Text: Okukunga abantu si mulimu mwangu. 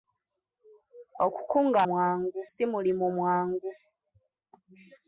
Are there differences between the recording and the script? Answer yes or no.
yes